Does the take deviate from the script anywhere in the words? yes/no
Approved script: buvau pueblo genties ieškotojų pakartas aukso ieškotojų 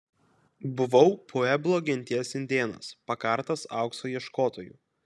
yes